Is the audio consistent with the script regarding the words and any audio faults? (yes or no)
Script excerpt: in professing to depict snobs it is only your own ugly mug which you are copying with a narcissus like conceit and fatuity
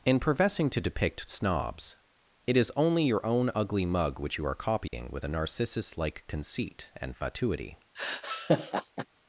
no